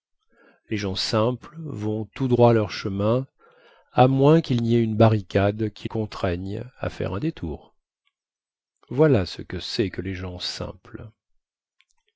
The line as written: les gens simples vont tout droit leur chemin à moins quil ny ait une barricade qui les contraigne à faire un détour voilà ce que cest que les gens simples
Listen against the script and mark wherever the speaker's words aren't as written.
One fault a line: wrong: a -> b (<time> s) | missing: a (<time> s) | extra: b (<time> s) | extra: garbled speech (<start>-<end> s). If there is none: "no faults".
missing: les (5.9 s)